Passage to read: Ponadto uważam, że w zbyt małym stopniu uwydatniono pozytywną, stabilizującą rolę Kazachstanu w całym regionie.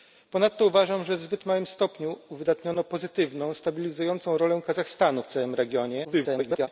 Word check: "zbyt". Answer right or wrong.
right